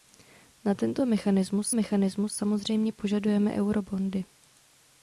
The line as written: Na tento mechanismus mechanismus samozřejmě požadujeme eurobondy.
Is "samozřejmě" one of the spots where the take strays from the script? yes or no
no